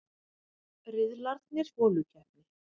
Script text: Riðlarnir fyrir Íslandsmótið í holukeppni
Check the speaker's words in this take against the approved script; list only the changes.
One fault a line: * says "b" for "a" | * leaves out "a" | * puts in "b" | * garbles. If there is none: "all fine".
* leaves out "fyrir Íslandsmótið"